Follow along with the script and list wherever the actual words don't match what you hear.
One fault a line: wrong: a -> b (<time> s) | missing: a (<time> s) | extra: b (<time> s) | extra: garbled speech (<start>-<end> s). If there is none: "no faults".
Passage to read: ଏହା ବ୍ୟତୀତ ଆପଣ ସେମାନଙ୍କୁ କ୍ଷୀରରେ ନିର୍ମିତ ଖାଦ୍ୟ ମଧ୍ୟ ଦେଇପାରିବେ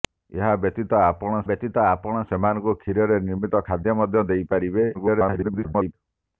extra: ବ୍ୟତୀତ ଆପଣ (1.5 s)
extra: garbled speech (4.9-5.9 s)